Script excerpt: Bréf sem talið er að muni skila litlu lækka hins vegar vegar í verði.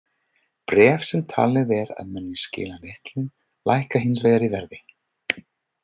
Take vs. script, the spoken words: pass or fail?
fail